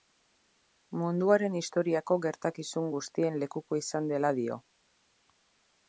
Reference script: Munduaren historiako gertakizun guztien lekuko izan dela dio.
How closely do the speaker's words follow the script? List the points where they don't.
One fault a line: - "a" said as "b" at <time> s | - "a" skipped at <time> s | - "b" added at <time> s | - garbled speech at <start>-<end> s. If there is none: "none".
none